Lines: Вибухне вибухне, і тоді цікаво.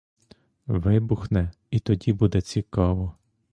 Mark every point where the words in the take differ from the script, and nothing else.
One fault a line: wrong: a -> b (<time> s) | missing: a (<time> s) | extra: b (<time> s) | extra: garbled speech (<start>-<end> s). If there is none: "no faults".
missing: вибухне (1.5 s)
extra: буде (2.1 s)